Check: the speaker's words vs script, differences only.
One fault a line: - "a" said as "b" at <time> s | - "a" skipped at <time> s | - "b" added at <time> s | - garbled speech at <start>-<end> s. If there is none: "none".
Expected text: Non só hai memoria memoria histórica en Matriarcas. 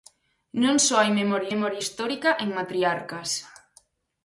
none